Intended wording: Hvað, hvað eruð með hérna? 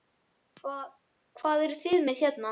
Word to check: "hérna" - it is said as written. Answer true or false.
true